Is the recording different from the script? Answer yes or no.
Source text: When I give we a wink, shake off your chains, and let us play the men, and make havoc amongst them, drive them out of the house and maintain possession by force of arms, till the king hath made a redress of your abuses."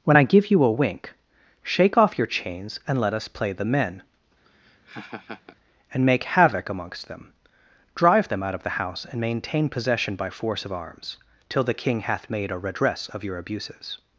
yes